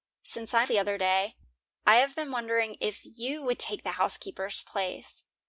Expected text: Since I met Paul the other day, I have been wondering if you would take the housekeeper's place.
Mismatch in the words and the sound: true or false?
true